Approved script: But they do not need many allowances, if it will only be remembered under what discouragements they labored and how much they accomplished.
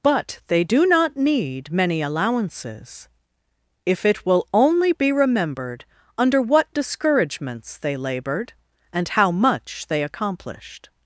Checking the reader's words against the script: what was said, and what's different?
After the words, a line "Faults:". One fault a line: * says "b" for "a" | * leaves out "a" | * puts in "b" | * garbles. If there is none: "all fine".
But they do not need many allowances, if it will only be remembered under what discouragements they labored and how much they accomplished.
Faults:
all fine